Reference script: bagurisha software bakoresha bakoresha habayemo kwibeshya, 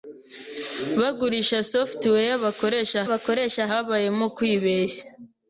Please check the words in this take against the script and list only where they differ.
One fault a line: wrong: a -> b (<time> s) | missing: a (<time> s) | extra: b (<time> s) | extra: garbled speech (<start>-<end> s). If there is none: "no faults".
no faults